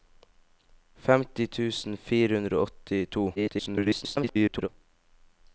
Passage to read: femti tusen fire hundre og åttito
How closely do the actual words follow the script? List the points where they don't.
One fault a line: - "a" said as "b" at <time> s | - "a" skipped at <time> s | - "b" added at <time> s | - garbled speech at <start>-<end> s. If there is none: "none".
- garbled speech at 3.4-4.7 s